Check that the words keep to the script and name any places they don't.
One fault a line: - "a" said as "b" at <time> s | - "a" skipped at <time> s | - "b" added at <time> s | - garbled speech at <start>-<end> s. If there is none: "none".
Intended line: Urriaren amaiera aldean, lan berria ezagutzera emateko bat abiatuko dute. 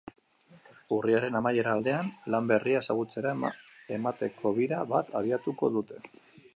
- "bira" added at 4.6 s